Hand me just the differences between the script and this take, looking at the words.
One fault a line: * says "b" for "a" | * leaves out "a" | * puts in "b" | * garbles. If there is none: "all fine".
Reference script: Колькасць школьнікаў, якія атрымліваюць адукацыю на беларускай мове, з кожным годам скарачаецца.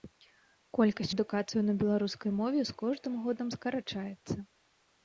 * leaves out "школьнікаў якія атрымліваюць"